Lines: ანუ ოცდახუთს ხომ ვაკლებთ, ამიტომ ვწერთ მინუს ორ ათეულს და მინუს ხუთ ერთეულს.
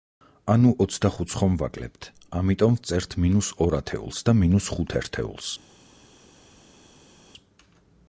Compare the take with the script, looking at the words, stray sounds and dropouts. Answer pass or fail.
pass